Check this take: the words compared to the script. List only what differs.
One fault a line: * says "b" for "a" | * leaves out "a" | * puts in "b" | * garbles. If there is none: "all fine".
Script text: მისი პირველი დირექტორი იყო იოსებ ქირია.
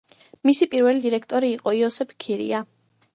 all fine